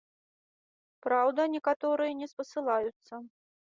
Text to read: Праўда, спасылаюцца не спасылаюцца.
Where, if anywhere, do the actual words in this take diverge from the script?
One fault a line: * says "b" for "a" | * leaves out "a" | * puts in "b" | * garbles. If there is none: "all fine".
* says "некаторыя" for "спасылаюцца"